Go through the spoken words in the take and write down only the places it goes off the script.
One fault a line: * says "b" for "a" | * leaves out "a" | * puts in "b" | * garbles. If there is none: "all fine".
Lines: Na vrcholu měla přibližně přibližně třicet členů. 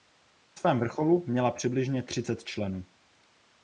* puts in "svém"
* leaves out "přibližně"